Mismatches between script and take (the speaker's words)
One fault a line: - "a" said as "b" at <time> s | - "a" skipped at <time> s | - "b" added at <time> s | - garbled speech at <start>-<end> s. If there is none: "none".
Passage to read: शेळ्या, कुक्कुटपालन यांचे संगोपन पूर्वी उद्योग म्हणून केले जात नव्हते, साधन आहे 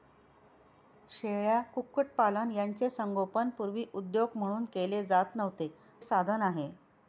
none